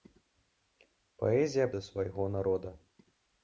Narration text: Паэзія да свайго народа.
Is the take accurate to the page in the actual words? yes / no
yes